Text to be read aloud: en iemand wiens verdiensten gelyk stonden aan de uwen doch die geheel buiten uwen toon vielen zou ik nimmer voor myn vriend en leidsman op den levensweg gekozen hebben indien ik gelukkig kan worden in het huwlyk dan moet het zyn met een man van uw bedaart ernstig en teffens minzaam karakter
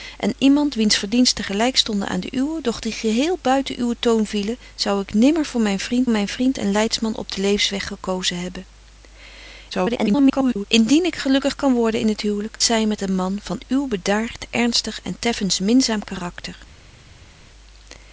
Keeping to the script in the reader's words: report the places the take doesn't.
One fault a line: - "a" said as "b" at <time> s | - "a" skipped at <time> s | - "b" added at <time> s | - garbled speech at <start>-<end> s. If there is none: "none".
- "myn vriend" added at 6.1 s
- garbled speech at 9.7-10.7 s
- "dan moet het" skipped at 12.6 s